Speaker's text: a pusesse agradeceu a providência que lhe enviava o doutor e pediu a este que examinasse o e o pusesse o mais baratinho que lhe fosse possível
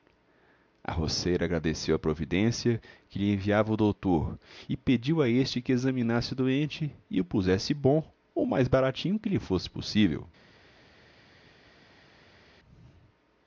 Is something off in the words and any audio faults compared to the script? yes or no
yes